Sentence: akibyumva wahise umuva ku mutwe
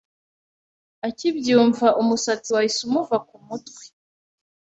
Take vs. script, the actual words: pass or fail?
fail